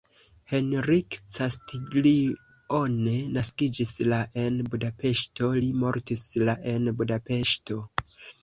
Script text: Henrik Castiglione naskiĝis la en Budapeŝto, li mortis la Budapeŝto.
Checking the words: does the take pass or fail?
fail